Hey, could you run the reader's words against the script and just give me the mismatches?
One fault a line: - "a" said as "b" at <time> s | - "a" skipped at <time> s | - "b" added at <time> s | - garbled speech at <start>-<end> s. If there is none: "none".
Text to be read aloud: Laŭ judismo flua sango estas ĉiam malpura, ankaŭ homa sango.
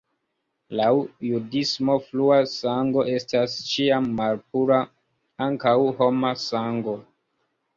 none